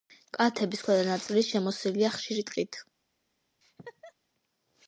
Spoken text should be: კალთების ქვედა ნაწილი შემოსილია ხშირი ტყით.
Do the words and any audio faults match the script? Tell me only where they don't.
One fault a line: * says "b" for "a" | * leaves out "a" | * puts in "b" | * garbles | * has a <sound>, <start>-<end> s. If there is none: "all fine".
* has a laugh, 3.6-4.1 s